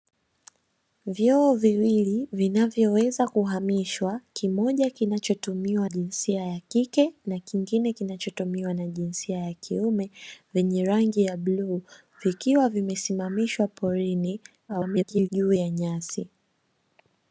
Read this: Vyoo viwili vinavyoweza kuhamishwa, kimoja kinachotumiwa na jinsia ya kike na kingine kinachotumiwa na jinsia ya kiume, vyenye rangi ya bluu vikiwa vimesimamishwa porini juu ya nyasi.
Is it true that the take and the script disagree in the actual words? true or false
true